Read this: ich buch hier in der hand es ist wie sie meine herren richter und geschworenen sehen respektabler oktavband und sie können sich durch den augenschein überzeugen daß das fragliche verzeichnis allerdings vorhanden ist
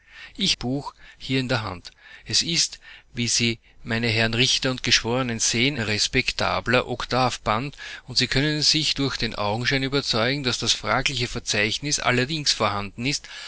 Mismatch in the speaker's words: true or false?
false